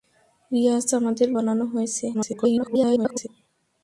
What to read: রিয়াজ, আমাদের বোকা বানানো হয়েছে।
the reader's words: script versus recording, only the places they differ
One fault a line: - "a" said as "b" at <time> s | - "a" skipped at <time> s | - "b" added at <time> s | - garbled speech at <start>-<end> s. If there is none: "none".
- "বোকা" skipped at 1.3 s
- garbled speech at 2.1-3.3 s